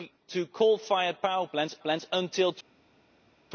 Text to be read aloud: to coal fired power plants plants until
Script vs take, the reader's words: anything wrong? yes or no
no